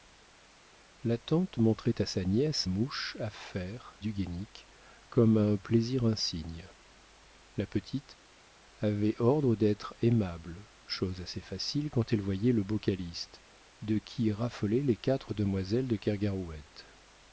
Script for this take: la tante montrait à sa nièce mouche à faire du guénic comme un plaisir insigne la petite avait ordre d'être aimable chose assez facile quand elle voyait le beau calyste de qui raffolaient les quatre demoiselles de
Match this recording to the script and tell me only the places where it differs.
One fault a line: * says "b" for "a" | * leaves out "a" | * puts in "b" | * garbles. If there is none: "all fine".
all fine